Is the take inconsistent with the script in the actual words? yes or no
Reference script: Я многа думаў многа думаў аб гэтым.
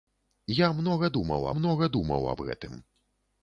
no